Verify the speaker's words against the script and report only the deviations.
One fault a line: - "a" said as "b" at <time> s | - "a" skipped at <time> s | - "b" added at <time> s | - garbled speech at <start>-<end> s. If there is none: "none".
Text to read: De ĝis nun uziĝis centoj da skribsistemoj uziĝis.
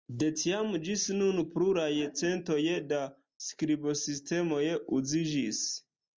- "tiam" added at 0.4 s
- "uziĝis" said as "pluraj" at 1.5 s